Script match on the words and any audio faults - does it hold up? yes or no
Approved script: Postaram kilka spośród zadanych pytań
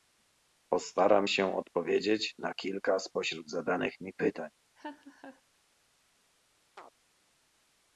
no